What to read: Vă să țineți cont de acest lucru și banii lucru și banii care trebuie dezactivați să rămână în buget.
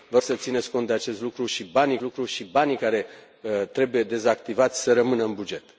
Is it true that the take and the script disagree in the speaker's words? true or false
false